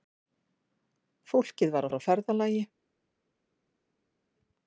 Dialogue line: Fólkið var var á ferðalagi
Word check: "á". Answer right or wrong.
right